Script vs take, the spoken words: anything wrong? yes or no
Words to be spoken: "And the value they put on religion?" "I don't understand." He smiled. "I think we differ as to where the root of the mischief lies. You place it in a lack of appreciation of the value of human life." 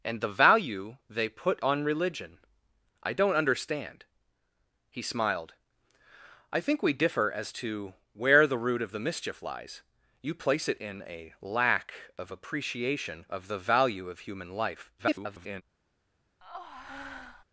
yes